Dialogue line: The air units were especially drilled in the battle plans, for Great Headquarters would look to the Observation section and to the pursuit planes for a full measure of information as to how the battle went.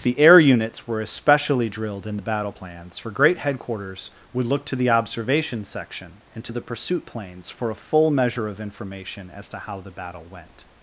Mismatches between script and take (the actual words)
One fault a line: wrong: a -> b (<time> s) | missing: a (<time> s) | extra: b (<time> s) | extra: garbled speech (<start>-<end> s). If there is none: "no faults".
no faults